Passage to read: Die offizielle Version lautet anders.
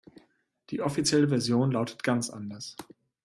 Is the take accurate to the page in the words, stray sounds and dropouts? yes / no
no